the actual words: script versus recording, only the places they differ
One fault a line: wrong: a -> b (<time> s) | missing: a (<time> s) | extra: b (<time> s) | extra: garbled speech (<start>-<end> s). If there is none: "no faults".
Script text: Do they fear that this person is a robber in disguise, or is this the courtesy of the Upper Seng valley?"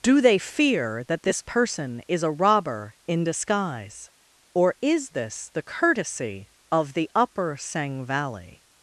no faults